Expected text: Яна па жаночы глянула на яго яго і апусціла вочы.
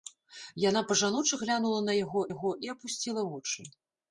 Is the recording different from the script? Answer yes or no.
no